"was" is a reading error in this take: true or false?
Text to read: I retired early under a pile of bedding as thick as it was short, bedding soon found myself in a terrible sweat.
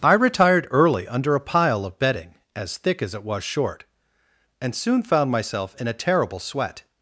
false